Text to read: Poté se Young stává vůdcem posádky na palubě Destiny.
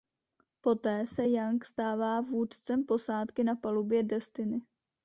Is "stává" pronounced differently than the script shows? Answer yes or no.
no